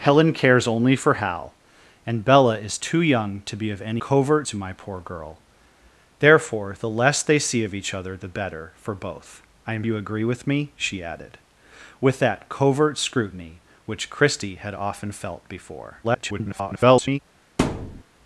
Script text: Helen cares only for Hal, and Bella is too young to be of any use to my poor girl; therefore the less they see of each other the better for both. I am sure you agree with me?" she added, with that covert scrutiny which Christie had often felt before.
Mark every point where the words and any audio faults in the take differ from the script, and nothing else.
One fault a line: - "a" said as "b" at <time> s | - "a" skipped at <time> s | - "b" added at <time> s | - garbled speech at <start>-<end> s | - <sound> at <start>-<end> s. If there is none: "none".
- "use" said as "covert" at 4.0 s
- "sure" skipped at 9.8 s
- garbled speech at 16.0-17.2 s
- thud at 17.6-18.0 s